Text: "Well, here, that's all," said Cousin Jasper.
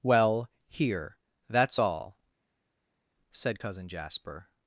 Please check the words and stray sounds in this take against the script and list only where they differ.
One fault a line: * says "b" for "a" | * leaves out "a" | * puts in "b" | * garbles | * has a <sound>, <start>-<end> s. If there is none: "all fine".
all fine